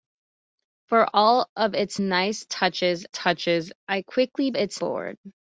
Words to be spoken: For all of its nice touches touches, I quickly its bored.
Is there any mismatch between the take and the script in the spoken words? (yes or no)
no